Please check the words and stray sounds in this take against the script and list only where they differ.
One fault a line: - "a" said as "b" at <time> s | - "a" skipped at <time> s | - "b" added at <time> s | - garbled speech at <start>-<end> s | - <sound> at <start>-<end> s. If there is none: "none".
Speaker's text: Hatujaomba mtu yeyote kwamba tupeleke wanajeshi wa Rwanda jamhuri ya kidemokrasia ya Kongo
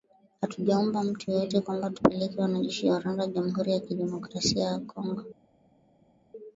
none